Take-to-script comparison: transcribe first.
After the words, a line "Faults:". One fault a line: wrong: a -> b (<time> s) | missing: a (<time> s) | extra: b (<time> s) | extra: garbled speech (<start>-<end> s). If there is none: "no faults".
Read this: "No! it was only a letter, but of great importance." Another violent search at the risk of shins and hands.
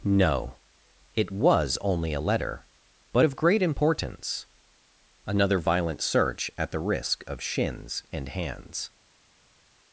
"No! it was only a letter, but of great importance." Another violent search at the risk of shins and hands.
Faults:
no faults